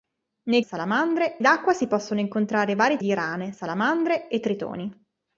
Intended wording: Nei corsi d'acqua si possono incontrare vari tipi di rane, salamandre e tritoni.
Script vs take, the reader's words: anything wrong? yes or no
yes